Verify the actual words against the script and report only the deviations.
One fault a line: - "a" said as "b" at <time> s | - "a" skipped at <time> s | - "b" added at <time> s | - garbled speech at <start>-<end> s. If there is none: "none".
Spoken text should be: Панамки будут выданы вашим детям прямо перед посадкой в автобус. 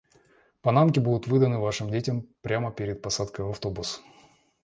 none